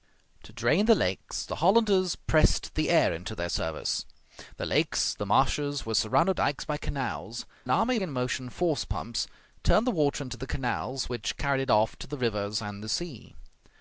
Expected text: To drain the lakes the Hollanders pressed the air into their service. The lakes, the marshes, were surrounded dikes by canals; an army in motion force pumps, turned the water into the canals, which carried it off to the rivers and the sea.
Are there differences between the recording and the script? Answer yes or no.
no